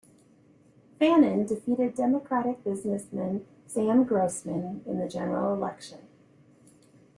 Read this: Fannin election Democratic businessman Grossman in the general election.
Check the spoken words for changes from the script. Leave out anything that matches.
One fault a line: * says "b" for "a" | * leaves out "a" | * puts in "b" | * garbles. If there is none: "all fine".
* says "defeated" for "election"
* puts in "Sam"